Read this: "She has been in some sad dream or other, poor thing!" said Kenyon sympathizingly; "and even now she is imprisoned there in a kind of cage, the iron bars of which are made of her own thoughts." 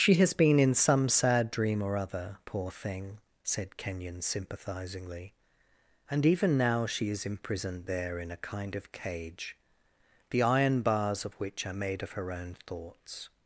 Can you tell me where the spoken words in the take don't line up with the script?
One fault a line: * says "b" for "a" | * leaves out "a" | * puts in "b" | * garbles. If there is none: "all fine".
all fine